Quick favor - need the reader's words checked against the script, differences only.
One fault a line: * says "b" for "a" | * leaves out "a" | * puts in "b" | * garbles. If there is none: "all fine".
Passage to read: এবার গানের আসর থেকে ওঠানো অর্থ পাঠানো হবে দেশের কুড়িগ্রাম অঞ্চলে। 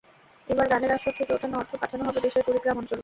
all fine